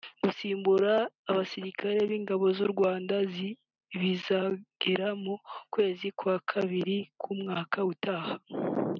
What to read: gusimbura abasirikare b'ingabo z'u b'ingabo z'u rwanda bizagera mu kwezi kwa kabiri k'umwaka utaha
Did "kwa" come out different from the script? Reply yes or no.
no